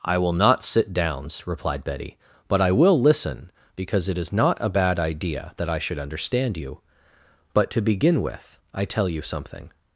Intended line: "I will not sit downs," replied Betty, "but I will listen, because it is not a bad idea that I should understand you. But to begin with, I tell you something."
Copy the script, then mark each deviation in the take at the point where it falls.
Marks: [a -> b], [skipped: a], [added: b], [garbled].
"I will not sit downs," replied Betty, "but I will listen, because it is not a bad idea that I should understand you. But to begin with, I tell you something."